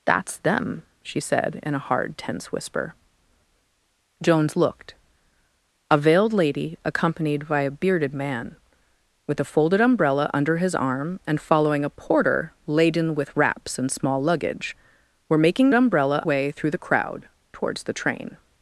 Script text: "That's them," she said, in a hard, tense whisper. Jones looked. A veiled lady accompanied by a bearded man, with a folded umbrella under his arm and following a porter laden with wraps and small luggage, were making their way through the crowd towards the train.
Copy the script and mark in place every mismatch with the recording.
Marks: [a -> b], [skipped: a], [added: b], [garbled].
"That's them," she said, in a hard, tense whisper. Jones looked. A veiled lady accompanied by a bearded man, with a folded umbrella under his arm and following a porter laden with wraps and small luggage, were making [their -> umbrella] way through the crowd towards the train.